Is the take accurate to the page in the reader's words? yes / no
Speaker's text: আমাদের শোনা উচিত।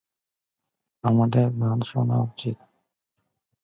no